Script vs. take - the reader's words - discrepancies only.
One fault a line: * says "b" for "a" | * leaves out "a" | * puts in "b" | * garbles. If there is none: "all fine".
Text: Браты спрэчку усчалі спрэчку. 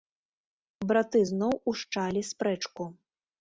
* says "зноў" for "спрэчку"